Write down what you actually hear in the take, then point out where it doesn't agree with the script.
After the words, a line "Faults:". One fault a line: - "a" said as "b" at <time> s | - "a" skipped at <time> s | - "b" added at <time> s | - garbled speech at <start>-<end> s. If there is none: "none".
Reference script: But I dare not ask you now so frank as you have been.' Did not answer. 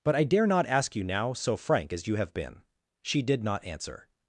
But I dare not ask you now so frank as you have been.' She did not answer.
Faults:
- "She" added at 3.0 s